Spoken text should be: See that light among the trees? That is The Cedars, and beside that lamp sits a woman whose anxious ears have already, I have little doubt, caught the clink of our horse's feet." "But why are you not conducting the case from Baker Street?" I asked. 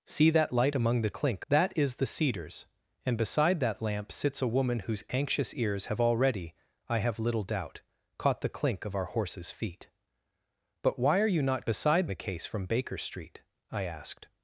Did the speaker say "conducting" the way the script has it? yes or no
no